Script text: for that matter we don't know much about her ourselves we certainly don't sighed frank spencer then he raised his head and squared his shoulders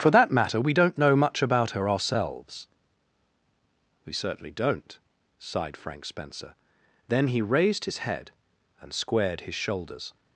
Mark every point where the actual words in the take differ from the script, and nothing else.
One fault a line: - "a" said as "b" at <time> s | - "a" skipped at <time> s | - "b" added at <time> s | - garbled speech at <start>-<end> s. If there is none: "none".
none